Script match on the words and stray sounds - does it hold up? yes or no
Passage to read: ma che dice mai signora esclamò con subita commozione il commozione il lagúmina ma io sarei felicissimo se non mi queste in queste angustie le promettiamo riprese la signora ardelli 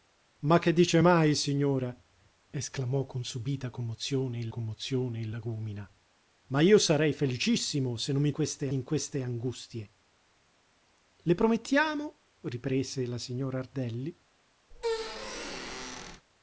no